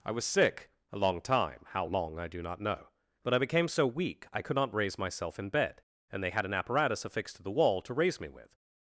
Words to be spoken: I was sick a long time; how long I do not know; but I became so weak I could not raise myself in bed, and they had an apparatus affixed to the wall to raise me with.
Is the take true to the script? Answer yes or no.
yes